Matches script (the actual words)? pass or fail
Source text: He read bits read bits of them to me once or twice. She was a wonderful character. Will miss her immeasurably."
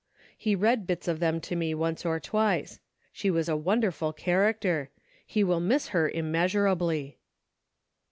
fail